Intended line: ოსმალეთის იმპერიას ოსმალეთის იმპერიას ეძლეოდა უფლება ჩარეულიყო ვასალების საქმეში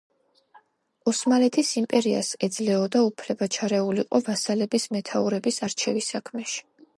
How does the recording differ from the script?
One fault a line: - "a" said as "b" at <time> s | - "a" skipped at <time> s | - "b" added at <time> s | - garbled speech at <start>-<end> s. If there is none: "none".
- "ოსმალეთის იმპერიას" skipped at 2.3 s
- "მეთაურების არჩევის" added at 5.0 s